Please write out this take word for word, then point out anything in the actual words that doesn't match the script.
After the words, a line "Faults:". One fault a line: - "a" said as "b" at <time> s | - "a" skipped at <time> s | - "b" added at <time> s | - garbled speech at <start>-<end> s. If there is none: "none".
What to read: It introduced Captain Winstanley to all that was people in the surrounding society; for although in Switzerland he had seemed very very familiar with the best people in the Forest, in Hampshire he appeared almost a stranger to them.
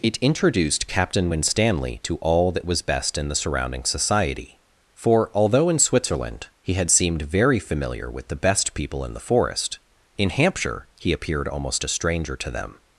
It introduced Captain Winstanley to all that was best in the surrounding society; for although in Switzerland he had seemed very familiar with the best people in the Forest, in Hampshire he appeared almost a stranger to them.
Faults:
- "people" said as "best" at 2.8 s
- "very" skipped at 7.6 s